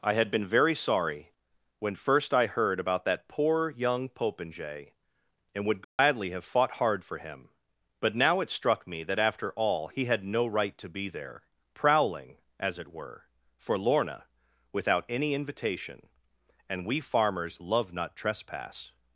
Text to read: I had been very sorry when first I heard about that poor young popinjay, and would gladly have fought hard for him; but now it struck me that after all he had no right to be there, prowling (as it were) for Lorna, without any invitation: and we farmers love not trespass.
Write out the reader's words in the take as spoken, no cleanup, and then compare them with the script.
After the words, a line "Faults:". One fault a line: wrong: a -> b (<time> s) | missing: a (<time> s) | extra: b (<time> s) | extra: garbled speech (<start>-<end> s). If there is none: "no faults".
I had been very sorry when first I heard about that poor young popinjay, and would gladly have fought hard for him; but now it struck me that after all he had no right to be there, prowling (as it were) for Lorna, without any invitation: and we farmers love not trespass.
Faults:
no faults